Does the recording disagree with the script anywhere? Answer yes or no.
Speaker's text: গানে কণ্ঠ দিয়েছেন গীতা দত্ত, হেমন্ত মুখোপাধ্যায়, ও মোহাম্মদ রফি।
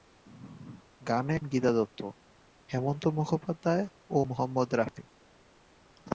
yes